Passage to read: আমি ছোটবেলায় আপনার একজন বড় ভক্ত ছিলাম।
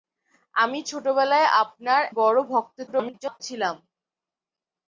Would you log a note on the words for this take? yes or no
yes